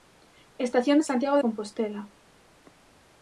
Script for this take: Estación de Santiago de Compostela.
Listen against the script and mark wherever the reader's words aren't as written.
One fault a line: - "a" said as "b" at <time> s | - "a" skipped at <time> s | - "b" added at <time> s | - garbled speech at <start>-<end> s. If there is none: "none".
- "de" skipped at 1.4 s